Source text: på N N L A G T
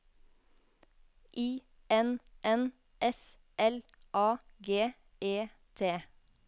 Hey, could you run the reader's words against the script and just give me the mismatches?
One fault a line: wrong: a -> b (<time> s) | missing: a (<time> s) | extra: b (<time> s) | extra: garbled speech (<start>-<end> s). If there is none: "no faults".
wrong: på -> I (1.4 s)
extra: S (3.0 s)
extra: E (5.2 s)